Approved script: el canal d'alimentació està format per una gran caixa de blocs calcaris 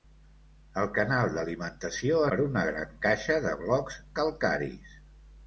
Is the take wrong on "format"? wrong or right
wrong